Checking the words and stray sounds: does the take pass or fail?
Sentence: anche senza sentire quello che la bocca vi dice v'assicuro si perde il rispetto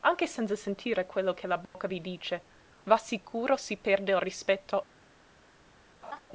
fail